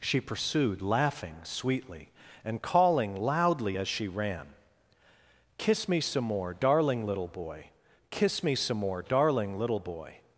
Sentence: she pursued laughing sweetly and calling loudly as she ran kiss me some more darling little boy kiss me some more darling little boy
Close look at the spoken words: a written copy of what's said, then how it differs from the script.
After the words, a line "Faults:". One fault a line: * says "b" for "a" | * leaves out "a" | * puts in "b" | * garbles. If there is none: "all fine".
she pursued laughing sweetly and calling loudly as she ran kiss me some more darling little boy kiss me some more darling little boy
Faults:
all fine